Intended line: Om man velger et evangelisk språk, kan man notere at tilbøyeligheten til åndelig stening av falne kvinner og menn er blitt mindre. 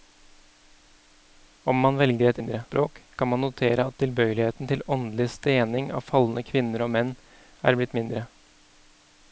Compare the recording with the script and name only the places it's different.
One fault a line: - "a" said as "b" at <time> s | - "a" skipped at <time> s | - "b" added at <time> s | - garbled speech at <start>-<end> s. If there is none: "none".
- "evangelisk" said as "mindre" at 2.4 s